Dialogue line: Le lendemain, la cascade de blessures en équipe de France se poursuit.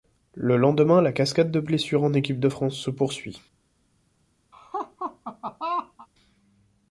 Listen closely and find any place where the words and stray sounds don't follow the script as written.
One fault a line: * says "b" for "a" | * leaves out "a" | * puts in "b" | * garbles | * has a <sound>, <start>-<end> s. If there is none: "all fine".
* has a laugh, 4.5-6.1 s